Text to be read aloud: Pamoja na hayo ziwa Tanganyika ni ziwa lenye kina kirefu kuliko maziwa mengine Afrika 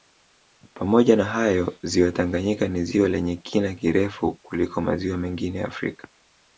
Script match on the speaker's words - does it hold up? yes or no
yes